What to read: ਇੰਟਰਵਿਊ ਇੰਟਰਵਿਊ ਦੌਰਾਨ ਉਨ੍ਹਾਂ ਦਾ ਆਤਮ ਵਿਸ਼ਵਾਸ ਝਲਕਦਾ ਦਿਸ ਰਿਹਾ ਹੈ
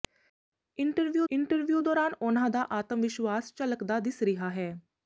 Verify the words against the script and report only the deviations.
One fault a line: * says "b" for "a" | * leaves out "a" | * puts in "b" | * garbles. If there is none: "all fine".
all fine